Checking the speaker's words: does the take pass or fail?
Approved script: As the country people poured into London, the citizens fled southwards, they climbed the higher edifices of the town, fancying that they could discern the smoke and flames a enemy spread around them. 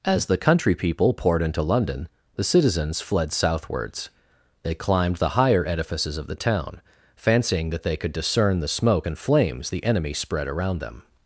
fail